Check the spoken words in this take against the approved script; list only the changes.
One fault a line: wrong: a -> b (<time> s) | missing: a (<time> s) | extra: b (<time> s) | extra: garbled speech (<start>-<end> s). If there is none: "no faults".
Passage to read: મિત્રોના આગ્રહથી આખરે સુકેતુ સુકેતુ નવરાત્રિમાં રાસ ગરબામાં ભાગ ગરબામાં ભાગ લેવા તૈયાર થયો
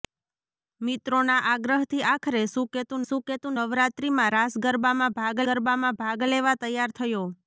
no faults